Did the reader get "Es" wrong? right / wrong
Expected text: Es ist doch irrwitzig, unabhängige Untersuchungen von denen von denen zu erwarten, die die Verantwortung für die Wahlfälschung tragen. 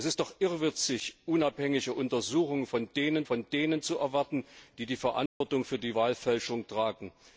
right